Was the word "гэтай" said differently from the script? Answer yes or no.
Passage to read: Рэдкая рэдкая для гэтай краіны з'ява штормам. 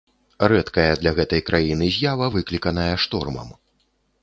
no